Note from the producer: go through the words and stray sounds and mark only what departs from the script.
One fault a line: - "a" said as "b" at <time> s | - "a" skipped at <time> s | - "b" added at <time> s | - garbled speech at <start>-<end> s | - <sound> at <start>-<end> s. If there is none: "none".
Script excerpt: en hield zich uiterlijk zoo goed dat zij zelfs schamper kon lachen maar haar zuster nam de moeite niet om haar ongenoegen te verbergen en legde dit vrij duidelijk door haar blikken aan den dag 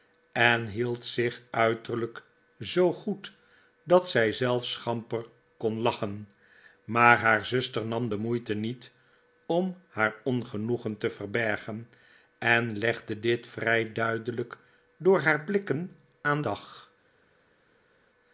- "den" skipped at 16.4 s